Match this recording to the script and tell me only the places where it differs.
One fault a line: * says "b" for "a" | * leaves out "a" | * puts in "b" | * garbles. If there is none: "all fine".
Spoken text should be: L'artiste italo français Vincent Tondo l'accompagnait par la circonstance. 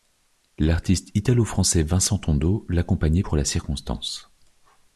* says "pour" for "par"